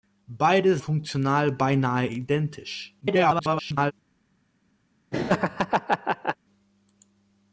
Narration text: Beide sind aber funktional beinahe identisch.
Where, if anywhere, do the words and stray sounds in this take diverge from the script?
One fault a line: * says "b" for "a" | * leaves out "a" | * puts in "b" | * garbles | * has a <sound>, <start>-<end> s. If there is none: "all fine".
* leaves out "sind aber"
* garbles
* has a laugh, 5.1-6.4 s